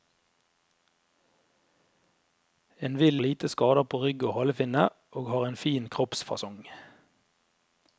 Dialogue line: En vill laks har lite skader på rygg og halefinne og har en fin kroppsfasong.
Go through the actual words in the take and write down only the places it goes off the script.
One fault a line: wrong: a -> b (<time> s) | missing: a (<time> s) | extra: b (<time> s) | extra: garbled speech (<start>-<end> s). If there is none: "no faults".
missing: laks har (3.2 s)